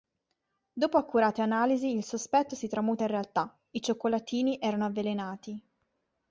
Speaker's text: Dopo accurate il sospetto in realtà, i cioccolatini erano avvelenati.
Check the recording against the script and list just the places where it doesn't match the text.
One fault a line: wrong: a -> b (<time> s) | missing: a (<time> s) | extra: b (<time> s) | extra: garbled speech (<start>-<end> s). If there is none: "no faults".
extra: analisi (1.4 s)
extra: si tramuta (2.5 s)